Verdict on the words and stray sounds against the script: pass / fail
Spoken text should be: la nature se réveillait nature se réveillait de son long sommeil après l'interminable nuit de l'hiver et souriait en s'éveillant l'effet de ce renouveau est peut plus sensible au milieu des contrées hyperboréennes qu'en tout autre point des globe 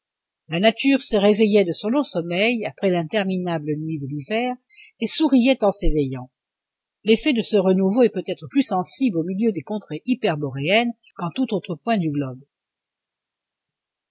fail